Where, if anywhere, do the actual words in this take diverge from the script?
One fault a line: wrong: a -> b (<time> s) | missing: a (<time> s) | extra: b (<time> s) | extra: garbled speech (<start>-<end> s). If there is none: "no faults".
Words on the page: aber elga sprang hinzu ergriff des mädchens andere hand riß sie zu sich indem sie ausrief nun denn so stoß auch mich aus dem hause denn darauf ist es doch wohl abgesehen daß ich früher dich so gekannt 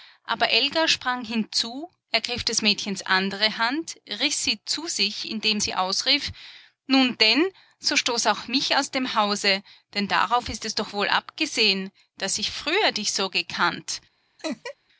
no faults